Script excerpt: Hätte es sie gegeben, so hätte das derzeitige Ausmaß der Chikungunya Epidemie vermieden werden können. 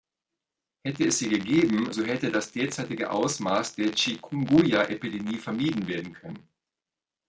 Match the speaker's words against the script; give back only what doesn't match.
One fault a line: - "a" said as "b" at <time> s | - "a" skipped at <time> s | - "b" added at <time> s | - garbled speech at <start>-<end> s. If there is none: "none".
none